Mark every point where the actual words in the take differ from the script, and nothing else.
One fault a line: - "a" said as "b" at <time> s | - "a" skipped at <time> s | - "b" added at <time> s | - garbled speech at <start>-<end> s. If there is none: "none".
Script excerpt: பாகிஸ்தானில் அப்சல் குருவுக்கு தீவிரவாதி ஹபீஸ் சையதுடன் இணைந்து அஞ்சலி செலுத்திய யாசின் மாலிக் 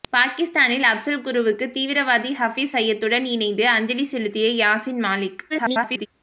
- garbled speech at 5.5-6.1 s